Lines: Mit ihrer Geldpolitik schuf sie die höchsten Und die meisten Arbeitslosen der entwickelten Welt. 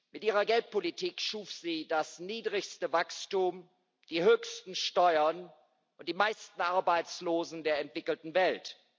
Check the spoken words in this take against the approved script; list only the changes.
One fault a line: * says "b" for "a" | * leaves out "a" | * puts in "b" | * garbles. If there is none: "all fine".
* puts in "das niedrigste Wachstum"
* puts in "Steuern"